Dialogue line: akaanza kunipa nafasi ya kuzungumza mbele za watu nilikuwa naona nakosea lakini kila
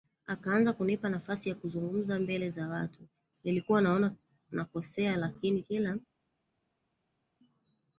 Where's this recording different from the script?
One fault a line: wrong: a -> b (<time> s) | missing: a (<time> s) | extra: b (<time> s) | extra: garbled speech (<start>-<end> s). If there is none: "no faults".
no faults